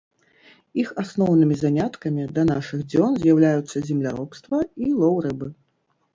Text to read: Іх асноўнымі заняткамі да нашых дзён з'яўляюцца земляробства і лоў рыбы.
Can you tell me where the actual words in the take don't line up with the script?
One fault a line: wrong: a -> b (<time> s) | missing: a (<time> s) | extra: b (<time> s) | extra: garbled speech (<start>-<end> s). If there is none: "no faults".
no faults